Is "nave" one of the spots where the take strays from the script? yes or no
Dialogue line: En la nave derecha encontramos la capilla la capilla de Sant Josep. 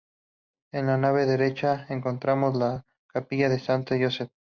no